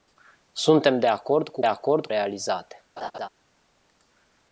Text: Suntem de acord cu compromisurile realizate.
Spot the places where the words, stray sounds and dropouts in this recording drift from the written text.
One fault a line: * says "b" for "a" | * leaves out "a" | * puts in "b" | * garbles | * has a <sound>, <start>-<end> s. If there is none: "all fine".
* says "acord" for "compromisurile"
* has a laugh, 3.0-3.3 s